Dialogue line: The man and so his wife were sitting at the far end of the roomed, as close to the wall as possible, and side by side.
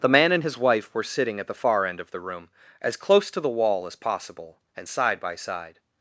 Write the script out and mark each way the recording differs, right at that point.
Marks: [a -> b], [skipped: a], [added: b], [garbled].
The man and [skipped: so] his wife were sitting at the far end of the [roomed, -> room] as close to the wall as possible, and side by side.